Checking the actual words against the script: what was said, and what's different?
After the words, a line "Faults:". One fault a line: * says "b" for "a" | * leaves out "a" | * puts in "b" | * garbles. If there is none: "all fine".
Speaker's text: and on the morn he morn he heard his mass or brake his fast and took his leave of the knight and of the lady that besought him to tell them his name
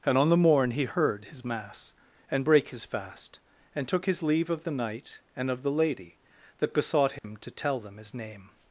and on the morn he heard his mass and brake his fast and took his leave of the knight and of the lady that besought him to tell them his name
Faults:
* leaves out "morn he"
* says "and" for "or"